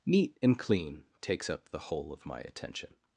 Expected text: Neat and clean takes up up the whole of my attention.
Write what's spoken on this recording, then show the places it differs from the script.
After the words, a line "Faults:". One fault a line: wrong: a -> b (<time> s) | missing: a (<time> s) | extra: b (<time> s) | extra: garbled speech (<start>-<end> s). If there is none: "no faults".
Neat and clean takes up the whole of my attention.
Faults:
missing: up (1.7 s)